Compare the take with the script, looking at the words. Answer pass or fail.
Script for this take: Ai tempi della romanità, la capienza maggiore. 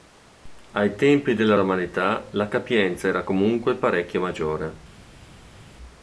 fail